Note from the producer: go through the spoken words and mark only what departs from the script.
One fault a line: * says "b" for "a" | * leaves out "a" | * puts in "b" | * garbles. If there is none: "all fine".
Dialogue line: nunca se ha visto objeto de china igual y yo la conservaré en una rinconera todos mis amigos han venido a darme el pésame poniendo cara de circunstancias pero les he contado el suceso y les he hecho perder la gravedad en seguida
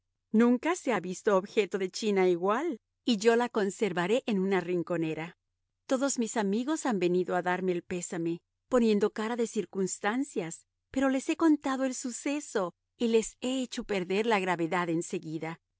all fine